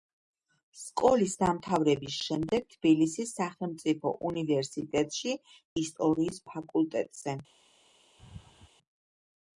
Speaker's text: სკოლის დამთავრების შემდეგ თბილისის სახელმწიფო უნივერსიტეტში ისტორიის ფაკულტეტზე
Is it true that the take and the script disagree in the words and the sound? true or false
true